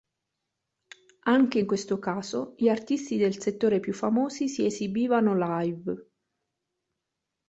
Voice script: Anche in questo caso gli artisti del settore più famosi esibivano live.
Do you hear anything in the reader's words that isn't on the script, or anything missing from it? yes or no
yes